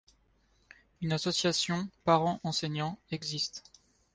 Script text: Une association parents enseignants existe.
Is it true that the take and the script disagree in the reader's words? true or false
false